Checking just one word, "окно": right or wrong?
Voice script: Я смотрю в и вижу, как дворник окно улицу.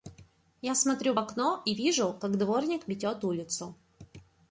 wrong